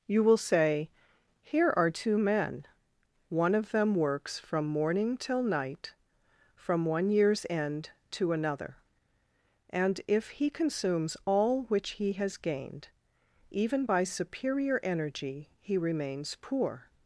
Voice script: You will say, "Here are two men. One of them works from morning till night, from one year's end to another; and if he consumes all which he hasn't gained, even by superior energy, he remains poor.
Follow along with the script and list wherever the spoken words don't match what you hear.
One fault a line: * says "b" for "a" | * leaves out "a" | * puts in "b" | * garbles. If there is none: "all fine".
* says "has" for "hasn't"